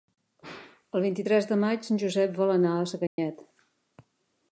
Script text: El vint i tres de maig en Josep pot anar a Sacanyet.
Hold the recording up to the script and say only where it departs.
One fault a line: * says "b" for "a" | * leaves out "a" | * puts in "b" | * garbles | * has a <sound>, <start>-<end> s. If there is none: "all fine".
* says "vol" for "pot"
* has a dropout, 3.1-3.2 s